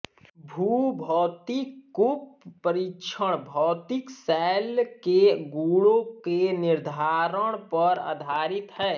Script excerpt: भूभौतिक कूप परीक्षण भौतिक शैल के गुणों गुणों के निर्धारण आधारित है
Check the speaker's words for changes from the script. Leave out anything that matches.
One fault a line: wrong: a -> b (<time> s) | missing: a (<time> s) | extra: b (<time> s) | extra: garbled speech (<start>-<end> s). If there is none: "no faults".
missing: गुणों (6.0 s)
extra: पर (7.7 s)